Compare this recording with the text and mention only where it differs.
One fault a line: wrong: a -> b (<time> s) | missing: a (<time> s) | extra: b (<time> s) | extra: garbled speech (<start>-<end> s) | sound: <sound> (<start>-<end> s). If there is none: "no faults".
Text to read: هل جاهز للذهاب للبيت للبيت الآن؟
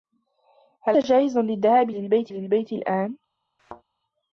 sound: thud (3.6-3.8 s)